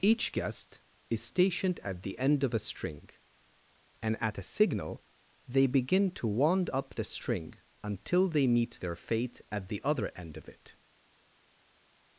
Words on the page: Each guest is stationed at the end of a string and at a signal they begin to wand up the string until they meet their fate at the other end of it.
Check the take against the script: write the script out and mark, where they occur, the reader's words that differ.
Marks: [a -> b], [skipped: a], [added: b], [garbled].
Each guest is stationed at the end of a string and at a signal they begin to wand up the string until they meet their fate at the other end of it.